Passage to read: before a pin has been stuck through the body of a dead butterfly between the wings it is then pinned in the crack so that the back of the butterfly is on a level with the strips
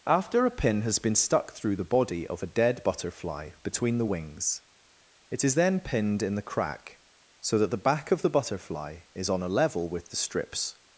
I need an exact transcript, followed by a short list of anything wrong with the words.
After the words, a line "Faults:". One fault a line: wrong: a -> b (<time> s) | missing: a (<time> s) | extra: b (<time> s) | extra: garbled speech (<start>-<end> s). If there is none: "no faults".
after a pin has been stuck through the body of a dead butterfly between the wings it is then pinned in the crack so that the back of the butterfly is on a level with the strips
Faults:
wrong: before -> after (0.1 s)